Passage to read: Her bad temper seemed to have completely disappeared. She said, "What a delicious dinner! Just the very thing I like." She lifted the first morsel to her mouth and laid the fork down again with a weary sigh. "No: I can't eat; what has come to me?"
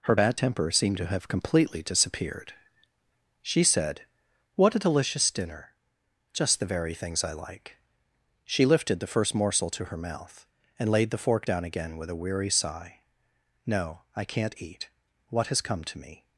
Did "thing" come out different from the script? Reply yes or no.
yes